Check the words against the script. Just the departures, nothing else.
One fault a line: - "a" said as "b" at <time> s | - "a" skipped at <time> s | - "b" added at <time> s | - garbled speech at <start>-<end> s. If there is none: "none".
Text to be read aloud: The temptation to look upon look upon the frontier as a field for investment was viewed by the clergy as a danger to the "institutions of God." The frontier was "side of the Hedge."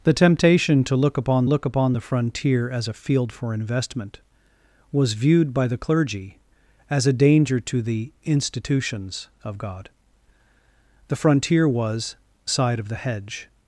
none